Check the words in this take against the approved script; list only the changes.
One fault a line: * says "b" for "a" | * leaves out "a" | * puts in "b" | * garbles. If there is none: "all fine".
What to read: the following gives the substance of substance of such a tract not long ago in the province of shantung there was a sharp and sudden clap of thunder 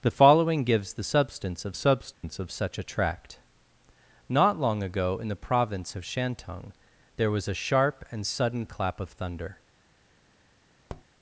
all fine